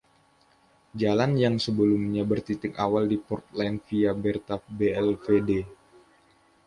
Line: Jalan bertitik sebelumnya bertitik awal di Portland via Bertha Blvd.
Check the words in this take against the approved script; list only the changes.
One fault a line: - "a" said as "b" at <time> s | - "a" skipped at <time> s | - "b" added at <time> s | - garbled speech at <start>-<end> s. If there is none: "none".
- "bertitik" said as "yang" at 1.4 s